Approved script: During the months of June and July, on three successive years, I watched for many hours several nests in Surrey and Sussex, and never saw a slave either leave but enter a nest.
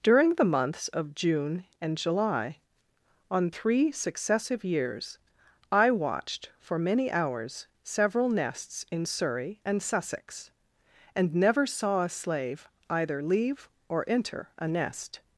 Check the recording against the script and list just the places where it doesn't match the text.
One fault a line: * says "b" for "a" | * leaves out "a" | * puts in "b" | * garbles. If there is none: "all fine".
* says "or" for "but"